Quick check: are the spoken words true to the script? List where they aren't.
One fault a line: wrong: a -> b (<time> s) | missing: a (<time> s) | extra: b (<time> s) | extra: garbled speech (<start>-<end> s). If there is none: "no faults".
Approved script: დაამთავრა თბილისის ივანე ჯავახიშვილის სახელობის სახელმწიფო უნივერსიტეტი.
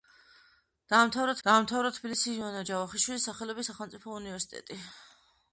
extra: დაამთავრა (1.5 s)